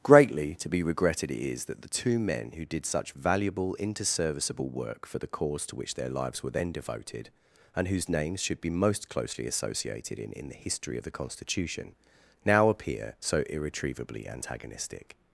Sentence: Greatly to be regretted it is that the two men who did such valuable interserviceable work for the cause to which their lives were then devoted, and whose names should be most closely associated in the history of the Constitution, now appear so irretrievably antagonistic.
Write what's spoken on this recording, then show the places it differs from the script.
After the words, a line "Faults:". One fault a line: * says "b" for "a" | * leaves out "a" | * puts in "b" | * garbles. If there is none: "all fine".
Greatly to be regretted it is that the two men who did such valuable interserviceable work for the cause to which their lives were then devoted, and whose names should be most closely associated in in the history of the Constitution, now appear so irretrievably antagonistic.
Faults:
* puts in "in"